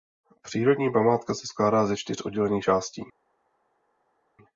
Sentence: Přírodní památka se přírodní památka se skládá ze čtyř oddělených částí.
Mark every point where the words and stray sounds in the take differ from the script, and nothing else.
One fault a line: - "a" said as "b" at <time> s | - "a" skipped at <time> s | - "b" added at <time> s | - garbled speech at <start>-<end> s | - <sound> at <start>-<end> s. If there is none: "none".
- "přírodní památka se" skipped at 1.5 s